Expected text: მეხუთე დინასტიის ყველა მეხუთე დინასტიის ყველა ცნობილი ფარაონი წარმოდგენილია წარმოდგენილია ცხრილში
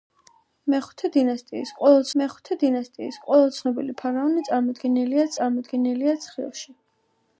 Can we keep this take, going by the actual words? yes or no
yes